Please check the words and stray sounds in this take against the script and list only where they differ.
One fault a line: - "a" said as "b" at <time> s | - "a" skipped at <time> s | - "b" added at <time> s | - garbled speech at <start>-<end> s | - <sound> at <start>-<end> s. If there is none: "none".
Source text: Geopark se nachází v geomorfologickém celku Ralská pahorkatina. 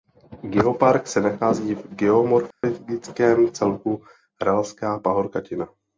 - dropout at 2.5-2.6 s